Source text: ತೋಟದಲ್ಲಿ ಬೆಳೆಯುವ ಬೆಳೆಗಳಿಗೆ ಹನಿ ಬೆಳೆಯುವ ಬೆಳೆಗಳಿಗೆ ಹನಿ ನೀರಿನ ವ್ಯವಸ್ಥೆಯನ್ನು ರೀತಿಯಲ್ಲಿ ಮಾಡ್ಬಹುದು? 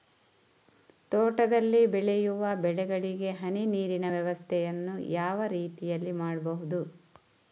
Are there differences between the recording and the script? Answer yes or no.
yes